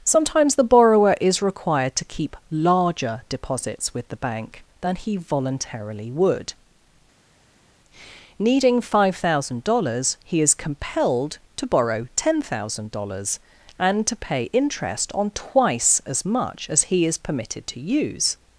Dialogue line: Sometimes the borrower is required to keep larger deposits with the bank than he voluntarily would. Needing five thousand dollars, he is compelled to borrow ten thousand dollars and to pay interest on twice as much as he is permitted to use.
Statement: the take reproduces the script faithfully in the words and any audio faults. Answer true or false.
true